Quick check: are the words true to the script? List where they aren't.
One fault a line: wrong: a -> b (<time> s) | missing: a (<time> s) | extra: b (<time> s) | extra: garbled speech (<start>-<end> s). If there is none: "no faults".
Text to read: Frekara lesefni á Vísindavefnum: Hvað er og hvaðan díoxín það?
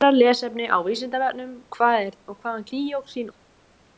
no faults